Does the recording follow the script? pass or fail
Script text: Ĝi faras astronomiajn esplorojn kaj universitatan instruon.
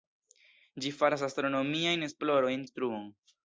fail